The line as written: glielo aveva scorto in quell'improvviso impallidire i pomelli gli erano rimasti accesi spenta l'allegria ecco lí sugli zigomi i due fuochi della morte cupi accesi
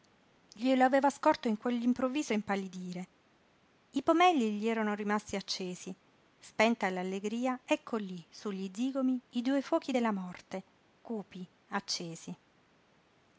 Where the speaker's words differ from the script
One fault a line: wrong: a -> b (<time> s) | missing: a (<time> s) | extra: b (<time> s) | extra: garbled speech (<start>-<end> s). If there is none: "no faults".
no faults